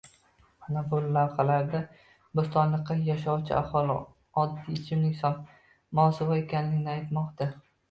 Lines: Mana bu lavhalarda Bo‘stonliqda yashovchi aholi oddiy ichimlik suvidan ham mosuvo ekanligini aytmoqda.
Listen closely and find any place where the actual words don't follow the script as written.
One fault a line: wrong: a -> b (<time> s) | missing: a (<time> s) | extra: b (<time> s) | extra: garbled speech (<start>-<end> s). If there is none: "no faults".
missing: suvidan (5.2 s)